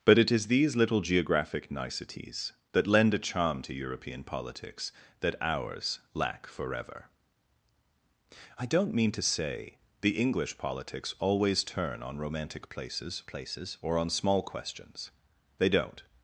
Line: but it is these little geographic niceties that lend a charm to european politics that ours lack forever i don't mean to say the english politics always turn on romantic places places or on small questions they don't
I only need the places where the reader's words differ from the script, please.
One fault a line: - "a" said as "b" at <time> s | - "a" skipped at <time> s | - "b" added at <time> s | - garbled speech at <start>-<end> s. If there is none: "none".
none